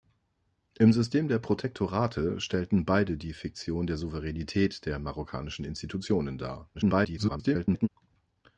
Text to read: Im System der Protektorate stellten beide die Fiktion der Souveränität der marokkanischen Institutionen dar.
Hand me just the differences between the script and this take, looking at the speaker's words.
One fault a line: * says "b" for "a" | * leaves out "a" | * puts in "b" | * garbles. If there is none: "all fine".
* garbles